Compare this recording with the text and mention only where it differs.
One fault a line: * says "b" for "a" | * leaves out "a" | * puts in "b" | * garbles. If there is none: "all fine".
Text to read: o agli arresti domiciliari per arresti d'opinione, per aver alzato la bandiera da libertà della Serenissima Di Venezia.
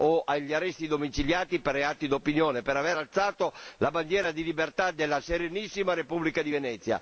* says "reati" for "arresti"
* says "di" for "da"
* puts in "Repubblica"